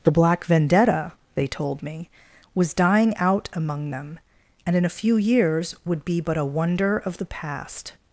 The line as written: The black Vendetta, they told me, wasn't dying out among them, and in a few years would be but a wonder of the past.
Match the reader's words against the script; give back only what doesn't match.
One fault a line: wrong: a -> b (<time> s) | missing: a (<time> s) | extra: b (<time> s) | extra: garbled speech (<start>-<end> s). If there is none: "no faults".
wrong: wasn't -> was (2.5 s)